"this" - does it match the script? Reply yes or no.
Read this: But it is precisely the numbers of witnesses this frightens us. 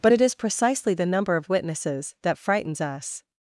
no